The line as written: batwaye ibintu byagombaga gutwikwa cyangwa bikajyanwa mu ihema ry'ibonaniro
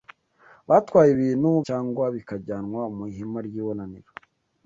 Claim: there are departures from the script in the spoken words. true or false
true